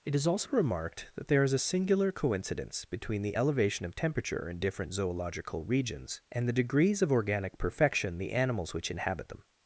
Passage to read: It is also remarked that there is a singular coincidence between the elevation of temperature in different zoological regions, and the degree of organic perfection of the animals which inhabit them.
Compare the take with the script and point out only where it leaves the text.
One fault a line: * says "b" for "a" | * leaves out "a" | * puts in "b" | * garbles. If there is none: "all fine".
* says "degrees" for "degree"
* leaves out "of"